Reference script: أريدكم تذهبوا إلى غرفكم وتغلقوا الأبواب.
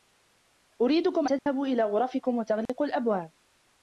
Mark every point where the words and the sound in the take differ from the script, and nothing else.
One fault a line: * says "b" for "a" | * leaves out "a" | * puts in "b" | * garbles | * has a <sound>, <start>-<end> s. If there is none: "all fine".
* has a dropout, 1.4-1.5 s
* has a dropout, 2.7-2.7 s